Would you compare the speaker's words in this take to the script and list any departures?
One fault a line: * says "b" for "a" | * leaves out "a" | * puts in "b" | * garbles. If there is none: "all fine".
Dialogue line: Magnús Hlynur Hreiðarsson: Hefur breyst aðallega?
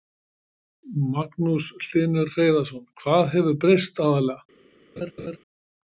* puts in "Hvað"